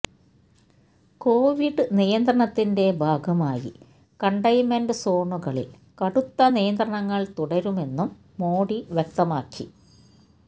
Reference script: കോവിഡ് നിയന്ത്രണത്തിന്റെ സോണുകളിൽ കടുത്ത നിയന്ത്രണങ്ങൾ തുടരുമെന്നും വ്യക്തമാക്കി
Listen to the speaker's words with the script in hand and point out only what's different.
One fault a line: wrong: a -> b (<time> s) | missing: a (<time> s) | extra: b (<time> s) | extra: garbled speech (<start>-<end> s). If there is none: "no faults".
extra: ഭാഗമായി കണ്ടെയ്ൻമെന്റ് (3.0 s)
extra: മോഡി (8.4 s)